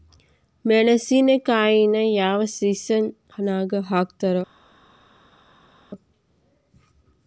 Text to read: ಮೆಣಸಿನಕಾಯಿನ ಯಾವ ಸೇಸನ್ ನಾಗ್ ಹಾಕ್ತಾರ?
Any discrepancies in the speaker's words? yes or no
no